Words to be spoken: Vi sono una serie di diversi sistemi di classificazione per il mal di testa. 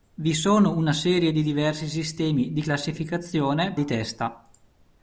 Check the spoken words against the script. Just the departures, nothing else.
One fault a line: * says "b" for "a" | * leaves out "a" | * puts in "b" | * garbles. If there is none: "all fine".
* leaves out "per il mal"